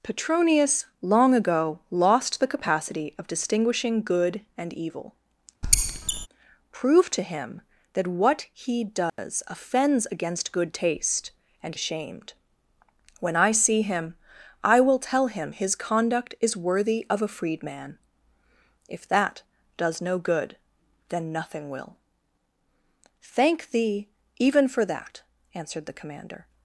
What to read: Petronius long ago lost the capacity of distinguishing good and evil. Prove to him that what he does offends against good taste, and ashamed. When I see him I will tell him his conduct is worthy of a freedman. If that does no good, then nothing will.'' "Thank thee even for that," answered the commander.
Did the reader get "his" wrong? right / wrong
right